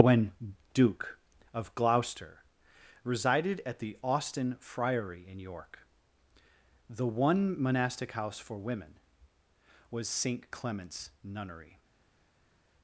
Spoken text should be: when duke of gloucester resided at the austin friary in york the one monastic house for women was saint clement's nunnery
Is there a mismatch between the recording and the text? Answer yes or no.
no